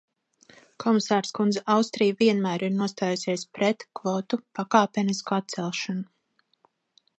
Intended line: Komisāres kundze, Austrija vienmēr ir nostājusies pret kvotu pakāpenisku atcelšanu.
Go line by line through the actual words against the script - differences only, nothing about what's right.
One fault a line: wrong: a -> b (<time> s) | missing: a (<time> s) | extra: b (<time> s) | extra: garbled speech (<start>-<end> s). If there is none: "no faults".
no faults